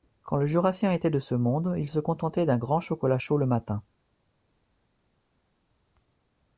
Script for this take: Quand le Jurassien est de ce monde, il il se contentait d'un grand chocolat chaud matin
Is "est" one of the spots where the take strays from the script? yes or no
yes